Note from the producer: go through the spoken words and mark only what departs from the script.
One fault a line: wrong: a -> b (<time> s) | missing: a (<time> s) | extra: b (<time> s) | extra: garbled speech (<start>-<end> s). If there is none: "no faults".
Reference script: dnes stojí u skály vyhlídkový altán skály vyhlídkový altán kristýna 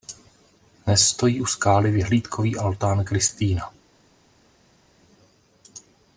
missing: skály vyhlídkový altán (3.0 s)